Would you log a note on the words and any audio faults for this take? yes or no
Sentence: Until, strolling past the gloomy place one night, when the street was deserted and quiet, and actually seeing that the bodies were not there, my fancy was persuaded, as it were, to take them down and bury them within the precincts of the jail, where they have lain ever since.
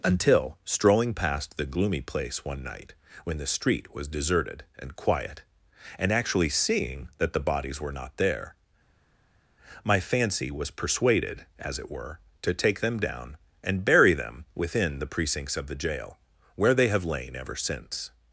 no